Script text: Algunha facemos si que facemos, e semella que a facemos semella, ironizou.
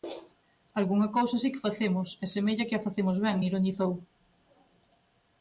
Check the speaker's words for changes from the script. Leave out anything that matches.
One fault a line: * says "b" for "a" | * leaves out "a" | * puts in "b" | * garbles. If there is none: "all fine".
* says "cousa" for "facemos"
* says "ben" for "semella"